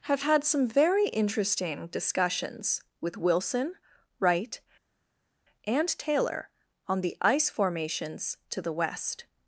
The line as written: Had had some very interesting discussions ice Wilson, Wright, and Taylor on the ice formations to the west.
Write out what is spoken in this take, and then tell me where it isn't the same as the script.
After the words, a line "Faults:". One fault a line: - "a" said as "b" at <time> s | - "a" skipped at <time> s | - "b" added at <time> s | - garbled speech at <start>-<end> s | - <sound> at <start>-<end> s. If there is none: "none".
Have had some very interesting discussions with Wilson, Wright, and Taylor on the ice formations to the west.
Faults:
- "Had" said as "Have" at 0.1 s
- "ice" said as "with" at 3.0 s